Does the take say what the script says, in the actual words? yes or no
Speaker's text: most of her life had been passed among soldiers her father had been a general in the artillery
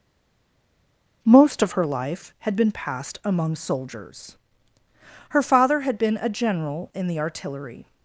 yes